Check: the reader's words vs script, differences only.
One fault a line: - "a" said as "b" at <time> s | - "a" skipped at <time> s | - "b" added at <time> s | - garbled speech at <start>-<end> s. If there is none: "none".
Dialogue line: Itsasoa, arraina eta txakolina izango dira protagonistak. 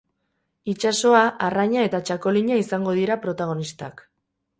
none